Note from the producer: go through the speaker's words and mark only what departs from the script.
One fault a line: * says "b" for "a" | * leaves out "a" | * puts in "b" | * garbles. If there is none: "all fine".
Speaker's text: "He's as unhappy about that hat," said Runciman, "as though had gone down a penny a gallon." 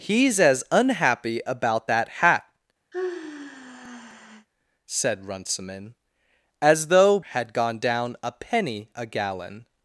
all fine